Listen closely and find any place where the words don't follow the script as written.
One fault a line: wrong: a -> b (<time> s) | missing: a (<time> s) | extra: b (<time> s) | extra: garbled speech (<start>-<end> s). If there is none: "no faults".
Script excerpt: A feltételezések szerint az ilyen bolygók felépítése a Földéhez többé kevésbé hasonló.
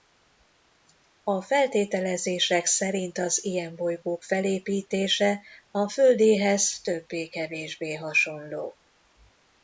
no faults